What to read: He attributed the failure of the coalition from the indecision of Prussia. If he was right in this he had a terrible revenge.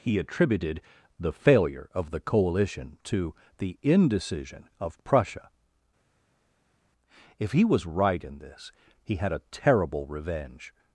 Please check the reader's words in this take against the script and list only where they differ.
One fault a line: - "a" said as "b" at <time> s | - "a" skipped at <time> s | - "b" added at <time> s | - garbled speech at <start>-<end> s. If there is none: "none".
- "from" said as "to" at 3.0 s